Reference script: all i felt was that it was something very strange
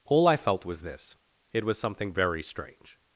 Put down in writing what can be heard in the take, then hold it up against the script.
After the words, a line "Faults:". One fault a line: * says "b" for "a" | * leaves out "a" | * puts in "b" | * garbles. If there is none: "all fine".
all i felt was this it was something very strange
Faults:
* says "this" for "that"